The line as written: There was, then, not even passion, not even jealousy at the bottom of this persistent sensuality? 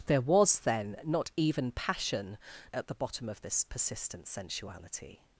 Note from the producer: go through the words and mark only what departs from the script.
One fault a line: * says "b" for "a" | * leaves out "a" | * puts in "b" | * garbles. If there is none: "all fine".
* leaves out "not even jealousy"